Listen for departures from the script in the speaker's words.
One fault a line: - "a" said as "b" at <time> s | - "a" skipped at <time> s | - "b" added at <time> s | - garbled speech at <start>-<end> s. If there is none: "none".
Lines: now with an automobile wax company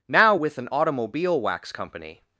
none